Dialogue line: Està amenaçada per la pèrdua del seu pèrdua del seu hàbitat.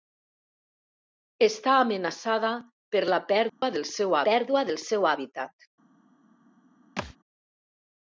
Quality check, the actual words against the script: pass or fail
pass